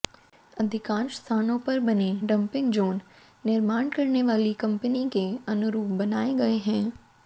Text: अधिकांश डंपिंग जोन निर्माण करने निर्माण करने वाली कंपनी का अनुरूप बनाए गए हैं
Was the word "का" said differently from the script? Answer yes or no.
yes